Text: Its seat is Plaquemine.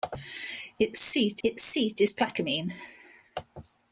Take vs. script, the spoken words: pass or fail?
fail